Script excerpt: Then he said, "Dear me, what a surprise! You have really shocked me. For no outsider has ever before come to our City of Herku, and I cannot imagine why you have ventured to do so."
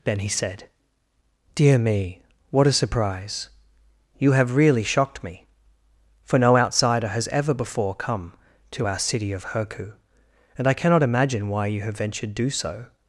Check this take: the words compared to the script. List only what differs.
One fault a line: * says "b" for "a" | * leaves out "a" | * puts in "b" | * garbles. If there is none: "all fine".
* leaves out "to"